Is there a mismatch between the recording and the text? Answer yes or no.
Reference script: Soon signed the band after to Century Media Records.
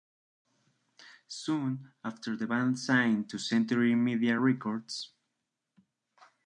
yes